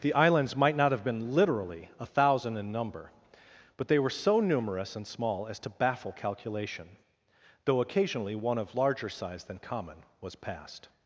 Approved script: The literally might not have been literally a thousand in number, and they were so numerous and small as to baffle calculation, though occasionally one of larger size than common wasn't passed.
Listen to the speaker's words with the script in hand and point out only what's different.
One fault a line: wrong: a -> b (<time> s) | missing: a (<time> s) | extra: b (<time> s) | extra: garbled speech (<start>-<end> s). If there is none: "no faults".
wrong: literally -> islands (0.1 s)
wrong: and -> but (3.8 s)
wrong: wasn't -> was (10.2 s)